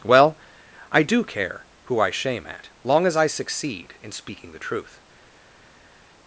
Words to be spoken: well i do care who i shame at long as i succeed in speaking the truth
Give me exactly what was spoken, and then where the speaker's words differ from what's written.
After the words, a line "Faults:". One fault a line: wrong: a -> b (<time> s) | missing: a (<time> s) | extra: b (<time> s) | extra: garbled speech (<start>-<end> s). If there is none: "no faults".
well i do care who i shame at long as i succeed in speaking the truth
Faults:
no faults